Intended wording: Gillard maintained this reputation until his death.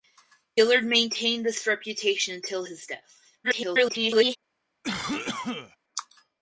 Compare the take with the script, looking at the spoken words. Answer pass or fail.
fail